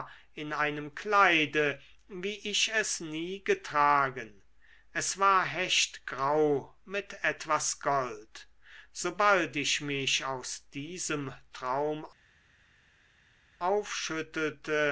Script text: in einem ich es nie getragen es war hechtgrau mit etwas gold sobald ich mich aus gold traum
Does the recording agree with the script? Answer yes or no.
no